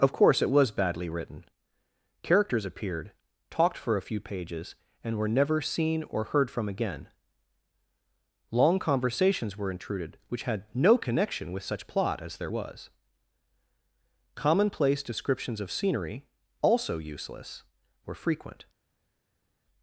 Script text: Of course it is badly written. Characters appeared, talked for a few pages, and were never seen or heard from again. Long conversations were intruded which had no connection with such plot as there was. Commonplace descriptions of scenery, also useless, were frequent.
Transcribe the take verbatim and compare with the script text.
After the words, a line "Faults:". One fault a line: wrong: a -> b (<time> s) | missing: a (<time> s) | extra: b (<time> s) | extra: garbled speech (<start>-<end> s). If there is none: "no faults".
Of course it was badly written. Characters appeared, talked for a few pages, and were never seen or heard from again. Long conversations were intruded which had no connection with such plot as there was. Commonplace descriptions of scenery, also useless, were frequent.
Faults:
wrong: is -> was (0.5 s)